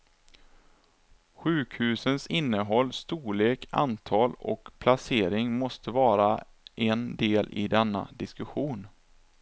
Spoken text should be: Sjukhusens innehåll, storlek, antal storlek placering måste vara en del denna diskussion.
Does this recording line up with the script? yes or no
no